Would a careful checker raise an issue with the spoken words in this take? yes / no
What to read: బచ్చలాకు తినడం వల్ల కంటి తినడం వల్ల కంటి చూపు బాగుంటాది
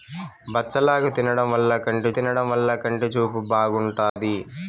no